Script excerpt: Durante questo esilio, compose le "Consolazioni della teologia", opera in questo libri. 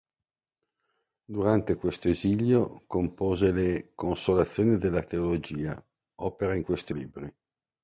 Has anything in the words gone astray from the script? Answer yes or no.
no